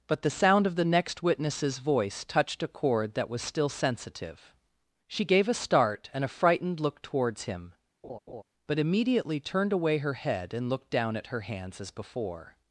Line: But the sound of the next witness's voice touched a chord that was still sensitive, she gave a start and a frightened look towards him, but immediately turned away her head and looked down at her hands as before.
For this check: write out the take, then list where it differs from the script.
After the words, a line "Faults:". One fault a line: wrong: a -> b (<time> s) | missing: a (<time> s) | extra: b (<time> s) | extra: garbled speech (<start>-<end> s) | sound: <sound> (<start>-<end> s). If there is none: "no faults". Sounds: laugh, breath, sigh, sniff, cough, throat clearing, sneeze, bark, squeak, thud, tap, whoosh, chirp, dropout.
But the sound of the next witness's voice touched a chord that was still sensitive, she gave a start and a frightened look towards him, but immediately turned away her head and looked down at her hands as before.
Faults:
sound: laugh (8.0-8.4 s)